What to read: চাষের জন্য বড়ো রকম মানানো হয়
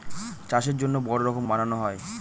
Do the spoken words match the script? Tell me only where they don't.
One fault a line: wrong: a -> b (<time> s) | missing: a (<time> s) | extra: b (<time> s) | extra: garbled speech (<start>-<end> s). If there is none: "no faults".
no faults